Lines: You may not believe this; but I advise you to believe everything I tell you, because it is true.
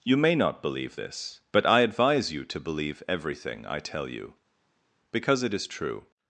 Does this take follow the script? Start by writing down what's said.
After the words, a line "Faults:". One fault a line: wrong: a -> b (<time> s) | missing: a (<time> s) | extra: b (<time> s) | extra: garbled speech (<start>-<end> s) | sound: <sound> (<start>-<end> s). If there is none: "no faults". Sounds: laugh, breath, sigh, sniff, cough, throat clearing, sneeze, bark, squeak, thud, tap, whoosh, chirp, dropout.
You may not believe this; but I advise you to believe everything I tell you, because it is true.
Faults:
no faults